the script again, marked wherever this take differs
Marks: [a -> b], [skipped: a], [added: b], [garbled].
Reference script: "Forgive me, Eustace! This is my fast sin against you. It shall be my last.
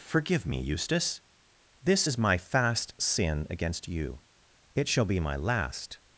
"Forgive me, Eustace! This is my fast sin against you. It shall be my last.